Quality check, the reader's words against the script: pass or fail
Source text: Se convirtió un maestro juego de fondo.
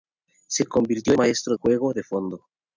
pass